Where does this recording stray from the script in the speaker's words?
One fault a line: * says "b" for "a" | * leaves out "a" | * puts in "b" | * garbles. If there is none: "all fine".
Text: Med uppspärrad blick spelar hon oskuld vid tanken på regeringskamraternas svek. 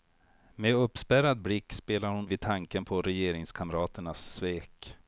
* leaves out "oskuld"